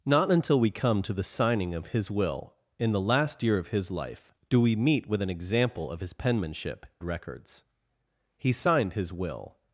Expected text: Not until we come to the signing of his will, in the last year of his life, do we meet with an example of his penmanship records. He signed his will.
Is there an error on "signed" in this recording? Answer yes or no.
no